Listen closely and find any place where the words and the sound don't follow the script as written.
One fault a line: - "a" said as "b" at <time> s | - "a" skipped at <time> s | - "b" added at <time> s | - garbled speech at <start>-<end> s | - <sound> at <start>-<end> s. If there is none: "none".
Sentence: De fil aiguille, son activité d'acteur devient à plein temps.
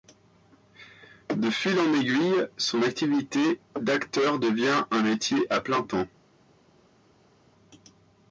- "en" added at 1.8 s
- "un métier" added at 4.9 s